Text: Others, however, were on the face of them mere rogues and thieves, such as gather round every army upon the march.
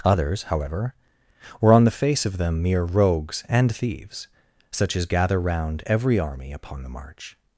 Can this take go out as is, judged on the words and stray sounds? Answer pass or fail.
pass